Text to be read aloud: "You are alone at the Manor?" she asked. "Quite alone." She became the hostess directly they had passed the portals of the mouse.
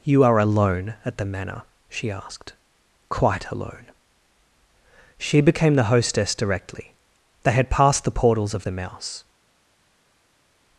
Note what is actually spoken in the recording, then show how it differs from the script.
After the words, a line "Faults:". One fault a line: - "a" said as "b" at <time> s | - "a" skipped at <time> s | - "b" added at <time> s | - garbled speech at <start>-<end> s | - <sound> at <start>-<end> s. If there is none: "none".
"You are alone at the Manor?" she asked. "Quite alone." She became the hostess directly they had passed the portals of the mouse.
Faults:
none